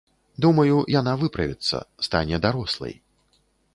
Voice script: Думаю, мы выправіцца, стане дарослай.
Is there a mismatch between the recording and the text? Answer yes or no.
yes